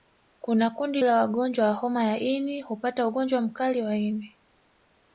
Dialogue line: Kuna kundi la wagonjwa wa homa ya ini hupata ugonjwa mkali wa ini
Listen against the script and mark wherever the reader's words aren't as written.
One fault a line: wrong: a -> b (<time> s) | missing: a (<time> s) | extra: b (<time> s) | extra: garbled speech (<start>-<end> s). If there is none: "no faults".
no faults